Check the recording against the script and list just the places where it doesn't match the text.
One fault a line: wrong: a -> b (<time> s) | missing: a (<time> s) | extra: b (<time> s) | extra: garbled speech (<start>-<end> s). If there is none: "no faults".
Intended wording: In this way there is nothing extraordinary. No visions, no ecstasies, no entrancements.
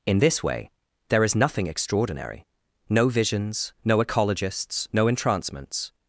wrong: ecstasies -> ecologists (4.0 s)